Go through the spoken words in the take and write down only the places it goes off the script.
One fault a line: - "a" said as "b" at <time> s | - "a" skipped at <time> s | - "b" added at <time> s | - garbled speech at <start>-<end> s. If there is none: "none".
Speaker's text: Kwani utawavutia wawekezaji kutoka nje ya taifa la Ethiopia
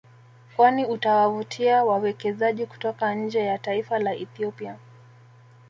none